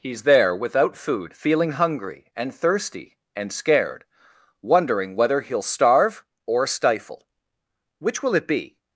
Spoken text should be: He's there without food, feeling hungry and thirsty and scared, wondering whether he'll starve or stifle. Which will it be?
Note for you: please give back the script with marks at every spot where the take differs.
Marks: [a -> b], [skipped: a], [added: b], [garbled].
He's there without food, feeling hungry and thirsty and scared, wondering whether he'll starve or stifle. Which will it be?